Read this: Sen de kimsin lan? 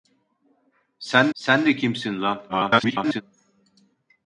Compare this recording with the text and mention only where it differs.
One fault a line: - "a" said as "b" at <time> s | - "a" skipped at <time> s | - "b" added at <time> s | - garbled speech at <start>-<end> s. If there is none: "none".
- "sen" added at 1.3 s
- garbled speech at 2.5-3.2 s